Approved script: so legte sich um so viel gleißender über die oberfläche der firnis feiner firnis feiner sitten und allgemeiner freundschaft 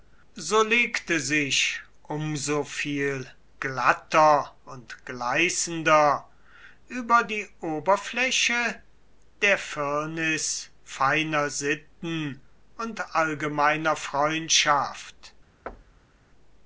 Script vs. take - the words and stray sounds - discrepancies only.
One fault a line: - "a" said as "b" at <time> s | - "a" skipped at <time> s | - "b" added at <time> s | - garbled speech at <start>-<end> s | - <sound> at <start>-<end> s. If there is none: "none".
- "glatter und" added at 3.6 s
- "firnis feiner" skipped at 11.5 s
- thud at 15.7-16.2 s